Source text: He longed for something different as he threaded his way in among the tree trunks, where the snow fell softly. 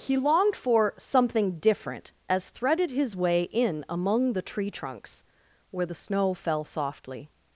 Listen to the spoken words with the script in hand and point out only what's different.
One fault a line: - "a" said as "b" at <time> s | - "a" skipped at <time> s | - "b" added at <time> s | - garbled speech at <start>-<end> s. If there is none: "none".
- "he" skipped at 2.5 s